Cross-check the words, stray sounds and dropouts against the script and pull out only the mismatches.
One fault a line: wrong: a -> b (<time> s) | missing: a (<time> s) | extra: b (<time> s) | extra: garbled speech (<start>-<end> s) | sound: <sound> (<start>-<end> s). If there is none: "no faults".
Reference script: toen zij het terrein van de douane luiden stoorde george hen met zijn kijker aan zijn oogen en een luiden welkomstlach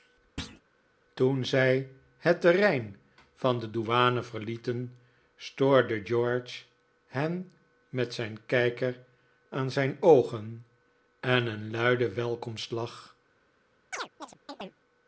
sound: thud (0.4-0.6 s)
wrong: luiden -> verlieten (4.2 s)
sound: chirp (13.9-14.8 s)